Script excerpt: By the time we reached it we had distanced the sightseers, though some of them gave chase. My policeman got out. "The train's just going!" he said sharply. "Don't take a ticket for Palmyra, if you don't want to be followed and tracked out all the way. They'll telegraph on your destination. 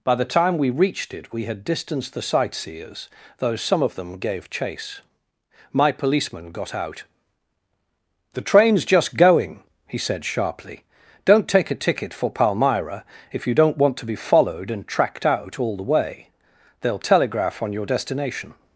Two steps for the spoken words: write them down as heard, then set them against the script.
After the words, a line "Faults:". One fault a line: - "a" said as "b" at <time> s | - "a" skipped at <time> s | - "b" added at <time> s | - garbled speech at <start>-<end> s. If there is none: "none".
By the time we reached it we had distanced the sightseers, though some of them gave chase. My policeman got out. "The train's just going!" he said sharply. "Don't take a ticket for Palmyra, if you don't want to be followed and tracked out all the way. They'll telegraph on your destination.
Faults:
none